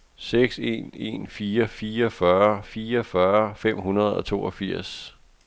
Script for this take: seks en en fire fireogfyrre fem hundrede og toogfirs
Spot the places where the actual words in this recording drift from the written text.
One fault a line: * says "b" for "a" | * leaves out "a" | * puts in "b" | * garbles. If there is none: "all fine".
* puts in "fireogfyrre"